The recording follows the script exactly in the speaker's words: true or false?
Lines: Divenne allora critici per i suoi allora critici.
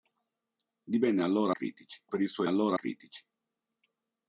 true